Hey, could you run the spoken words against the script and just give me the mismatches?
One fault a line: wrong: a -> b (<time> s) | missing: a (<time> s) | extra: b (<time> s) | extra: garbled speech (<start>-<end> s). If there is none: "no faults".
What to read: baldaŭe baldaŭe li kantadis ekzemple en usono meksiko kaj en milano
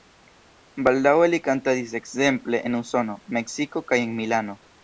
missing: baldaŭe (1.3 s)